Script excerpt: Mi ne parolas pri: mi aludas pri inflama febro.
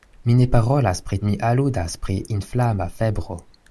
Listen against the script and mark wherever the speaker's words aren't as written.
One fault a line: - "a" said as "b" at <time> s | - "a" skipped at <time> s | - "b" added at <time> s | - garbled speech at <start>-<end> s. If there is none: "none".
none